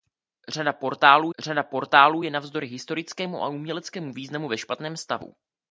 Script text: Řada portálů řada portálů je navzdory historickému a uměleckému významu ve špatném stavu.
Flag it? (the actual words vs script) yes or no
no